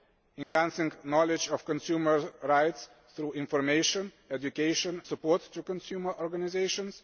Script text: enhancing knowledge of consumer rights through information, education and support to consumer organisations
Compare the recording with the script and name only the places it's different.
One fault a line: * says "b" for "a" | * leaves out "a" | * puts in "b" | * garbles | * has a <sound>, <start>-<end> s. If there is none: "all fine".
* has a dropout, 0.4-0.6 s
* leaves out "and"